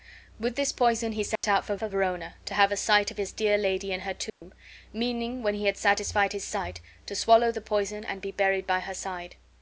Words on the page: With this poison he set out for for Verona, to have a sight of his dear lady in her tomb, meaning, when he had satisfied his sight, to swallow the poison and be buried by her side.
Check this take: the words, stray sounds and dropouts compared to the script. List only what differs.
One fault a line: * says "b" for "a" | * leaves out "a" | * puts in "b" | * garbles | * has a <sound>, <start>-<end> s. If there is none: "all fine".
* has a dropout, 1.4-1.4 s
* has a dropout, 4.3-4.4 s